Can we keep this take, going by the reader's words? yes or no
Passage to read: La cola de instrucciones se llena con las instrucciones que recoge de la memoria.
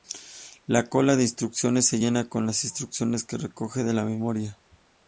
yes